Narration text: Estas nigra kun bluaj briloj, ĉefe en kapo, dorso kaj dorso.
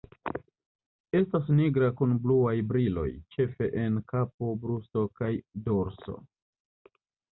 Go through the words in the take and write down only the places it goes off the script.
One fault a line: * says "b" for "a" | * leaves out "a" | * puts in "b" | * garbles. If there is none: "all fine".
* says "brusto" for "dorso"